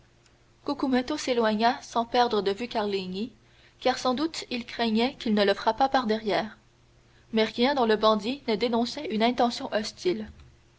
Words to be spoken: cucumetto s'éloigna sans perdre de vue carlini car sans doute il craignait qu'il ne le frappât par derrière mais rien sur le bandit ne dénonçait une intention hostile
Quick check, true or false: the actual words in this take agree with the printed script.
false